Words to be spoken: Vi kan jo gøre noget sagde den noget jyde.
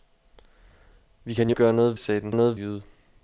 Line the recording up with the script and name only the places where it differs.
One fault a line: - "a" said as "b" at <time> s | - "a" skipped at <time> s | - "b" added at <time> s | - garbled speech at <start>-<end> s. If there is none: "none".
none